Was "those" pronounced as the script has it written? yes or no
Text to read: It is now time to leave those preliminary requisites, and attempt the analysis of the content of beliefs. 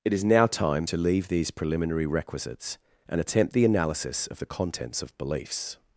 no